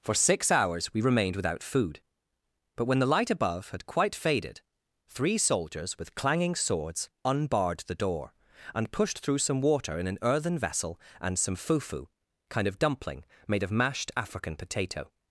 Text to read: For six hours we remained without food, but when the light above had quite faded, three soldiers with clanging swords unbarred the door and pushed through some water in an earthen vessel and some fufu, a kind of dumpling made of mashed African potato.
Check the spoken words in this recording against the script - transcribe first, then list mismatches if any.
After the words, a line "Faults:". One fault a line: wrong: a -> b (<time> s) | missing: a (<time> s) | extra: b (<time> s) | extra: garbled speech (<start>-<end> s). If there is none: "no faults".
For six hours we remained without food, but when the light above had quite faded, three soldiers with clanging swords unbarred the door and pushed through some water in an earthen vessel and some fufu, kind of dumpling made of mashed African potato.
Faults:
missing: a (12.1 s)